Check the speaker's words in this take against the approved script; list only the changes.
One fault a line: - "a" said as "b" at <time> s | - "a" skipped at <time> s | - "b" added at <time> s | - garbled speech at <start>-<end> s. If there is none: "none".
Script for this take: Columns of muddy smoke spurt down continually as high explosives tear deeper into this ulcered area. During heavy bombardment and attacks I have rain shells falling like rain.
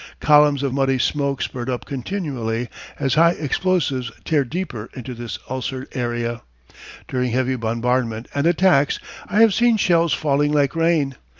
- "down" said as "up" at 1.7 s
- "rain" said as "seen" at 9.6 s